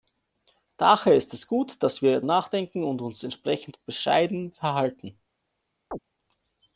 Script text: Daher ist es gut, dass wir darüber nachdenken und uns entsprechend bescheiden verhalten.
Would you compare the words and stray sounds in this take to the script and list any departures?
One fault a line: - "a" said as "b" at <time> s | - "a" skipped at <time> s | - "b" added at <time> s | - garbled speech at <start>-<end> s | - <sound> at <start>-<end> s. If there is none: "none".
- "darüber" skipped at 2.2 s
- chirp at 5.9-6.0 s